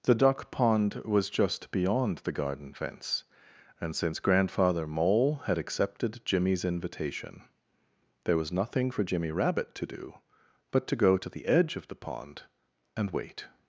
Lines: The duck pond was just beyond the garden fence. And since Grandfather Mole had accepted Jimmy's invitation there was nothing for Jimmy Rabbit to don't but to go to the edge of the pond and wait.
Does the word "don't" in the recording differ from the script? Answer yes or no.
yes